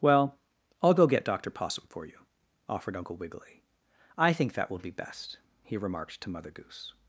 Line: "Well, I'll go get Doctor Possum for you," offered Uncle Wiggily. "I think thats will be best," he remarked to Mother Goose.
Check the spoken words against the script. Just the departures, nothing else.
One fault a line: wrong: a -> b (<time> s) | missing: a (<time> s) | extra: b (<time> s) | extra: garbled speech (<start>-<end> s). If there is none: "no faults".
wrong: thats -> that (4.5 s)